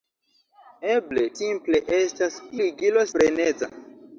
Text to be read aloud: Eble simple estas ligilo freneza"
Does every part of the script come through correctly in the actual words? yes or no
yes